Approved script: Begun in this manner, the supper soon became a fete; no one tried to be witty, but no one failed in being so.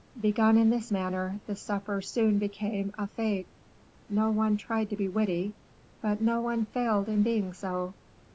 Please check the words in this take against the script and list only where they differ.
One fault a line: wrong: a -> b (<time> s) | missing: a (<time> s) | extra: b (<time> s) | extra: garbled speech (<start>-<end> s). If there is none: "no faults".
no faults